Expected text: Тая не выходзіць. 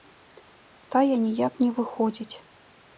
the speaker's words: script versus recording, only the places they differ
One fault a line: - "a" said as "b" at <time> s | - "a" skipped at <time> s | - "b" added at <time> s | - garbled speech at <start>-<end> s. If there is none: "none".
- "ніяк" added at 1.3 s